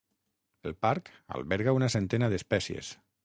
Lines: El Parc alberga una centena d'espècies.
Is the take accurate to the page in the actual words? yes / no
yes